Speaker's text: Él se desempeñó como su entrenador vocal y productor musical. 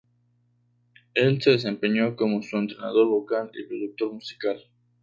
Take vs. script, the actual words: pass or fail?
pass